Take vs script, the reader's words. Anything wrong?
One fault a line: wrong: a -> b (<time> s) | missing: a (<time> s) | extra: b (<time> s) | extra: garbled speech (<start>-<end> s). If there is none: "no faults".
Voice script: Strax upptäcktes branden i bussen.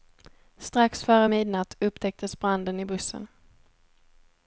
extra: före midnatt (1.0 s)